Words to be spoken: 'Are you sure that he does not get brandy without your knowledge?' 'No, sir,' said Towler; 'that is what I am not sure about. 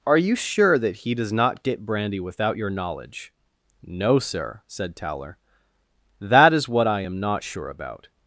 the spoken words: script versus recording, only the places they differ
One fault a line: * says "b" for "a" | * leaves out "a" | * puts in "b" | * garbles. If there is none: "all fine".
all fine